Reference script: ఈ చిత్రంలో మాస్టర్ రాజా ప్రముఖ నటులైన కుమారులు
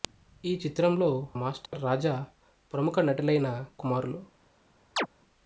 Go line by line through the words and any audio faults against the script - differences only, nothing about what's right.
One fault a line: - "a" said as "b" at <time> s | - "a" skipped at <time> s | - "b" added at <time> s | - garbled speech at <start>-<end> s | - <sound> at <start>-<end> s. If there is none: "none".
- dropout at 1.7-1.7 s
- chirp at 5.0-5.1 s